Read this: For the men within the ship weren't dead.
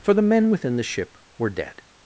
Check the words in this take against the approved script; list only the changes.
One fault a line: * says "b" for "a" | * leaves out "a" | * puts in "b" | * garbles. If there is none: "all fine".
* says "were" for "weren't"